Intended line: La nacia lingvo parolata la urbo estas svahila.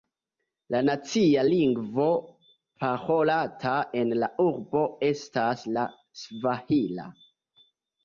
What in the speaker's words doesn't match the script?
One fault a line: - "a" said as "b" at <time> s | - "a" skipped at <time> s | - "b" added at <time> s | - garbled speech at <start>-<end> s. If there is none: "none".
- "en" added at 4.1 s
- "la" added at 5.7 s